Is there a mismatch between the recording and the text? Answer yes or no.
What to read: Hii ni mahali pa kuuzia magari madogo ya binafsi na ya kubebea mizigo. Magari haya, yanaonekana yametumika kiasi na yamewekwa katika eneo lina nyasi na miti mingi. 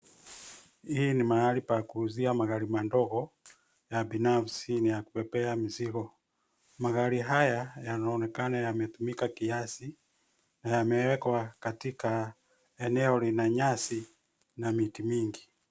no